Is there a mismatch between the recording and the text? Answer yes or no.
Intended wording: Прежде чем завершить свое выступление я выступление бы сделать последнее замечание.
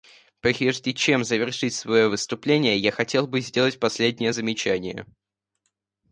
yes